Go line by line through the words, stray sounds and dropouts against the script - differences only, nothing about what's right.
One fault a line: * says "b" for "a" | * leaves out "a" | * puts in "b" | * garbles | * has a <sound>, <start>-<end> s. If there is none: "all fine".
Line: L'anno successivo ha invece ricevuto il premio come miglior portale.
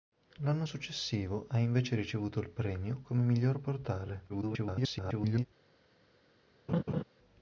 * garbles
* has a laugh, 6.7-7.0 s